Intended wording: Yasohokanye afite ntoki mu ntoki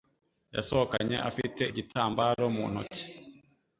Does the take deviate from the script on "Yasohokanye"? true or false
false